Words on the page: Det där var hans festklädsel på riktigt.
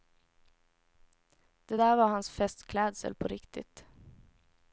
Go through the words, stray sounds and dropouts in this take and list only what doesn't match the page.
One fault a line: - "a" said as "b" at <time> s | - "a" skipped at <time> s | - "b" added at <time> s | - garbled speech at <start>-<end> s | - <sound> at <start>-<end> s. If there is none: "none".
none